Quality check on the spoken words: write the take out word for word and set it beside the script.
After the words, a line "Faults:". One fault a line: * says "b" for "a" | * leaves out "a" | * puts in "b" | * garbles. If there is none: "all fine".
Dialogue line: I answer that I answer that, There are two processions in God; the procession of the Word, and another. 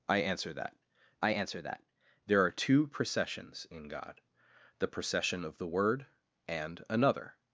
I answer that I answer that, There are two processions in God; the procession of the Word, and another.
Faults:
all fine